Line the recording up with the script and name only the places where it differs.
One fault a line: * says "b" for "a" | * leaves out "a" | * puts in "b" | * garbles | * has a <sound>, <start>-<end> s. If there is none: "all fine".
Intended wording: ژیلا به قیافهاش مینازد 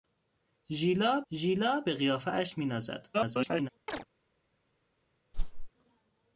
* puts in "ژیلا"
* garbles
* has a chirp, 3.9-4.0 s
* has a whoosh, 5.3-5.7 s